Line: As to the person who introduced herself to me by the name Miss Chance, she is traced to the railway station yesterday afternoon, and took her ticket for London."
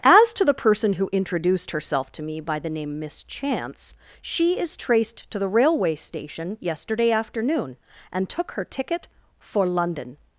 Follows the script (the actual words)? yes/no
yes